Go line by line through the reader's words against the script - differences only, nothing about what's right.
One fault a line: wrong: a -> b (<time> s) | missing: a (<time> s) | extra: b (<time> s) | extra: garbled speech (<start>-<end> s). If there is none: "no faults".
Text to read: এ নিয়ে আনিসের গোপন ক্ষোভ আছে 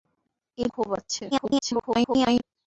missing: নিয়ে আনিসের গোপন (0.7 s)
extra: garbled speech (1.3-2.4 s)